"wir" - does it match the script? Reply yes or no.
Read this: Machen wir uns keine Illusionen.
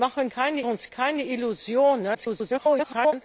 no